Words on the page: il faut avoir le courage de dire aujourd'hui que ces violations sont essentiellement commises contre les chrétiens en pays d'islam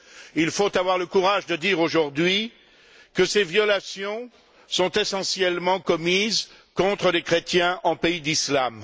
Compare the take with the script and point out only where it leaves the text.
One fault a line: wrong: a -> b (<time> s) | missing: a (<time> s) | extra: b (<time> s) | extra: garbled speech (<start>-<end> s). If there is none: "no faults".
no faults